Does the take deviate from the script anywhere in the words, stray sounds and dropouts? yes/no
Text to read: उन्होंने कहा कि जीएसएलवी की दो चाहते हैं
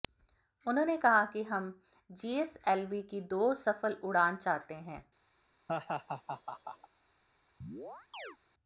yes